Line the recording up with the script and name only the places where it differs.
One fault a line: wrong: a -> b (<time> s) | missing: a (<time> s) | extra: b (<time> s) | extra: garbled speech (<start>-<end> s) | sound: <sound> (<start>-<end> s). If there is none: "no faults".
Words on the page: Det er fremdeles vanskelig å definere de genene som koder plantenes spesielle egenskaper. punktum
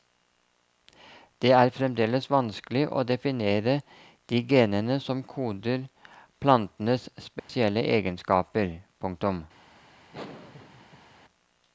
sound: dropout (7.4-7.5 s)
sound: laugh (10.1-11.2 s)